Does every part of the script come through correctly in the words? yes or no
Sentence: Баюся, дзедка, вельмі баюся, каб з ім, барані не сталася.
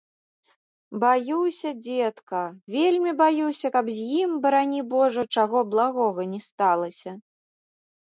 no